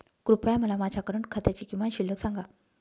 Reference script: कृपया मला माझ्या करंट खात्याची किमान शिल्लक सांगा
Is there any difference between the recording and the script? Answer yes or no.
no